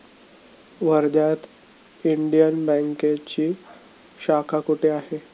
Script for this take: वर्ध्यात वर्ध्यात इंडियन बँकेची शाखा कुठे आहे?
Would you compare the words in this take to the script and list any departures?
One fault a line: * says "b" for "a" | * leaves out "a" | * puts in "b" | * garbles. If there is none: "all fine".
* leaves out "वर्ध्यात"